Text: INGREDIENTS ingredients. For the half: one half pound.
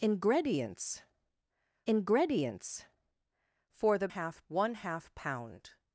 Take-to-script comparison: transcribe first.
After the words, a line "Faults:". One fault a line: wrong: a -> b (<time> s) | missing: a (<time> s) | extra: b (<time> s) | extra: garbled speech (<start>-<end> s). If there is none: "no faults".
INGREDIENTS ingredients. For the half: one half pound.
Faults:
no faults